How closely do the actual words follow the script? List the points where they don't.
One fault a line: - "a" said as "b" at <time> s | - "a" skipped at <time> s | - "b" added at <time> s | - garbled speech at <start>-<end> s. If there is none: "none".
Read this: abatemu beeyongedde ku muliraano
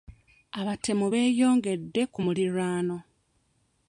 none